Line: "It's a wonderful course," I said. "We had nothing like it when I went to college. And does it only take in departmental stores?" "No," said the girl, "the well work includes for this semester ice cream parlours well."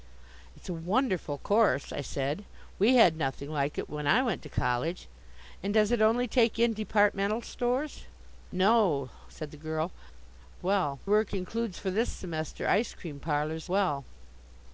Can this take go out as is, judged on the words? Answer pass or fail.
pass